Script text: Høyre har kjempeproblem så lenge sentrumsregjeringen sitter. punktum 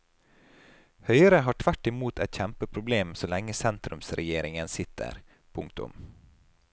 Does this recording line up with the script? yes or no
no